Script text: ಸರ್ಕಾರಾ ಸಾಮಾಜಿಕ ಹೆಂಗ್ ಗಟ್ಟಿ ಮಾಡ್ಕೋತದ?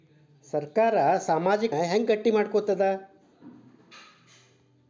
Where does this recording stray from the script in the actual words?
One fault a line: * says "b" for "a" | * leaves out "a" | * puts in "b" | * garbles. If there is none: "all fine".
all fine